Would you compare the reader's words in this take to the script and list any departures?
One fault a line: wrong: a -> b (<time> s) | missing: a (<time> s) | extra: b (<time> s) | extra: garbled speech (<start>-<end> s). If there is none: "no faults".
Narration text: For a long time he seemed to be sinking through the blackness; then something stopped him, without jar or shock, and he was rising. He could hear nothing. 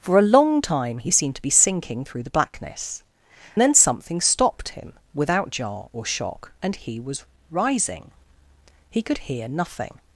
no faults